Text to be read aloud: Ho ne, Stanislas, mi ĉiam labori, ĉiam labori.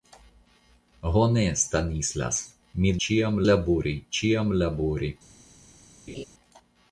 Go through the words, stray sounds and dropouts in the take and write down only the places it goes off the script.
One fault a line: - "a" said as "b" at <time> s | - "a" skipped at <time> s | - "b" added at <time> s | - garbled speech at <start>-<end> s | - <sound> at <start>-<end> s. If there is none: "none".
- laugh at 6.1-6.2 s